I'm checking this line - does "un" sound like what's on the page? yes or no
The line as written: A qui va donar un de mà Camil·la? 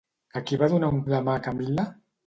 yes